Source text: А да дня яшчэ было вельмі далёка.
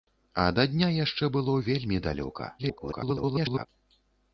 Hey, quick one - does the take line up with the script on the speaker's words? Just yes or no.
no